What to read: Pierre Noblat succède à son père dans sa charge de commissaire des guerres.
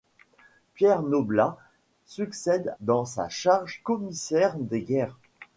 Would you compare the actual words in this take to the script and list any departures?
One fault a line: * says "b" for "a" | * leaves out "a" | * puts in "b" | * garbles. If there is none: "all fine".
* leaves out "à son père"
* leaves out "de"